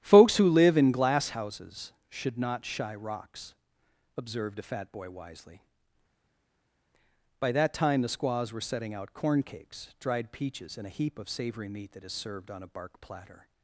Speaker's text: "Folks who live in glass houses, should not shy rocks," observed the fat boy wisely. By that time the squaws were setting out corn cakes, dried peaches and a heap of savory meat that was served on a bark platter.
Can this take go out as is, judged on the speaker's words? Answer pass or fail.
fail